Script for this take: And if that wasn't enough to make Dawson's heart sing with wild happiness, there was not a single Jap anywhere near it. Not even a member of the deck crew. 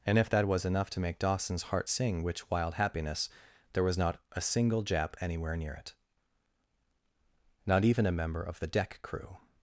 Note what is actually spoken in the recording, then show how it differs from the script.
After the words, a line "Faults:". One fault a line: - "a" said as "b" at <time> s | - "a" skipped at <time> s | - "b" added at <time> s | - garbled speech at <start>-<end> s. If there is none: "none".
And if that was enough to make Dawson's heart sing which wild happiness, there was not a single Jap anywhere near it. Not even a member of the deck crew.
Faults:
- "wasn't" said as "was" at 0.5 s
- "with" said as "which" at 2.2 s